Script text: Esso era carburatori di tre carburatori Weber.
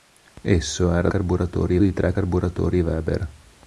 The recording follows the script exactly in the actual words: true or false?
true